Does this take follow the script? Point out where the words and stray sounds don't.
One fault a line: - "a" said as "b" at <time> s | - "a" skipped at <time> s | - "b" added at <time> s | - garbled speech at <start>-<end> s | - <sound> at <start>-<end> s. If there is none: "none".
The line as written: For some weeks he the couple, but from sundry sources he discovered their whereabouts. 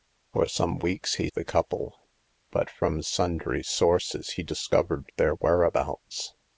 none